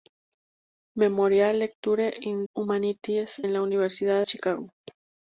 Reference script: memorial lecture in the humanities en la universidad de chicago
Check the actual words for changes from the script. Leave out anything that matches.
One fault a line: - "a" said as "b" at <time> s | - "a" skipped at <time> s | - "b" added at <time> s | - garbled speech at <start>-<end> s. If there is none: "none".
- "the" skipped at 2.4 s
- "de" skipped at 4.2 s